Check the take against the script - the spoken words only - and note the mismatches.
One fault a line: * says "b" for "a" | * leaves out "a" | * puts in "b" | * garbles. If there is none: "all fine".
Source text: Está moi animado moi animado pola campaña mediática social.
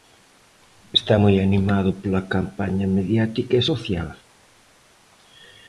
* leaves out "moi animado"
* puts in "e"